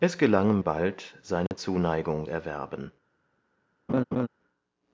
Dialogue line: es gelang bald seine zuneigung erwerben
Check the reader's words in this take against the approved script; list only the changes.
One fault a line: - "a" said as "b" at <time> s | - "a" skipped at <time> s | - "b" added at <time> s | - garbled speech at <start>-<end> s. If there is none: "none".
none